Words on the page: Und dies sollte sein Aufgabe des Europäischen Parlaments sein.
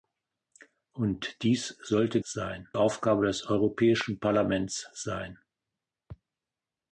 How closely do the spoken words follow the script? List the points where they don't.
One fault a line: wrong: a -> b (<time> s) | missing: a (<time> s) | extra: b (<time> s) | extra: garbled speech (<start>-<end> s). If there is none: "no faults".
no faults